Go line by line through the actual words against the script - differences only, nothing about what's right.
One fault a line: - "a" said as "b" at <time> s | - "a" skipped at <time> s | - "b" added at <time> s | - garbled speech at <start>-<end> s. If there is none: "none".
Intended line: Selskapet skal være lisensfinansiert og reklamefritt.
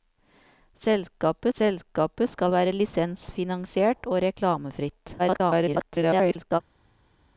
- "selskapet" added at 1.6 s
- garbled speech at 5.2-6.6 s